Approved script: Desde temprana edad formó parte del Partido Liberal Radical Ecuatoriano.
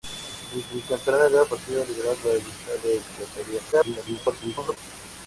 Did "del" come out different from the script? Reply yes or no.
yes